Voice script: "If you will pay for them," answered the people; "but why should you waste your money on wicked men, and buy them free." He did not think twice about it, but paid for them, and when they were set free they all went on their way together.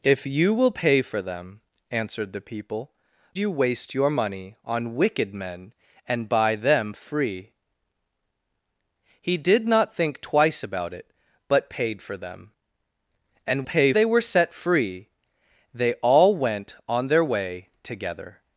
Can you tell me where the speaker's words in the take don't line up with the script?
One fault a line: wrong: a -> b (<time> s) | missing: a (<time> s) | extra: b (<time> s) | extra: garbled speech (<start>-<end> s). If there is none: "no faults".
missing: but why should (2.9 s)
wrong: when -> pay (13.6 s)